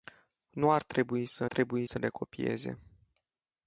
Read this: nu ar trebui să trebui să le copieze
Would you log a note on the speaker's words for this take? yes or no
no